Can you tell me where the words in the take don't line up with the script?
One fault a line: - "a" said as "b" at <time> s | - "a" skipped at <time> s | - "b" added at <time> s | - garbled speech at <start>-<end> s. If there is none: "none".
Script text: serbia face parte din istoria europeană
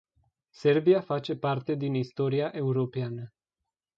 none